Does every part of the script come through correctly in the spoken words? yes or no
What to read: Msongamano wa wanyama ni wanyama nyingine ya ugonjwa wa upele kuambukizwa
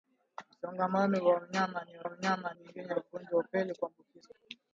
yes